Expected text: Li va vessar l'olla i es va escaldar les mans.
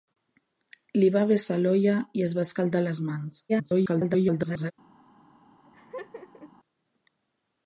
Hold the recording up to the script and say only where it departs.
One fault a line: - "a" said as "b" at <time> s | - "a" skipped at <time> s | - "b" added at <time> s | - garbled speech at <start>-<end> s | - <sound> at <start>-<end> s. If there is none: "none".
- garbled speech at 3.5-4.7 s
- laugh at 5.7-6.5 s